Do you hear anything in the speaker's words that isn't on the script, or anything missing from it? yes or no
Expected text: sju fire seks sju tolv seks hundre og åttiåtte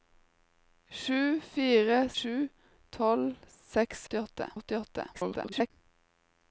yes